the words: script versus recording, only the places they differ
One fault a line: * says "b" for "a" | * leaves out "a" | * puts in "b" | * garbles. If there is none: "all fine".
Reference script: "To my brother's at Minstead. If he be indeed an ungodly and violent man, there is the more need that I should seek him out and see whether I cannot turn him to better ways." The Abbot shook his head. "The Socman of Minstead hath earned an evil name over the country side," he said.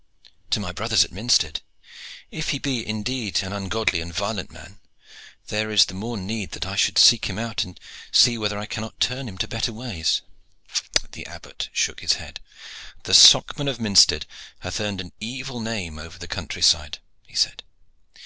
all fine